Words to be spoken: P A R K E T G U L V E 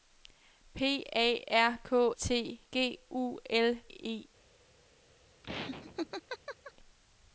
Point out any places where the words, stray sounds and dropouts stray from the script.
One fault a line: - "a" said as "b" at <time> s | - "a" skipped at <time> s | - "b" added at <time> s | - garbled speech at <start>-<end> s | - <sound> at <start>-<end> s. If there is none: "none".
- "E" skipped at 2.1 s
- "V" skipped at 3.8 s
- laugh at 5.4-6.7 s